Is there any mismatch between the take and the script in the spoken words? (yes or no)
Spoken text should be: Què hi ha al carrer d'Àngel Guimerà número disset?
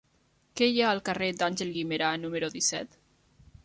no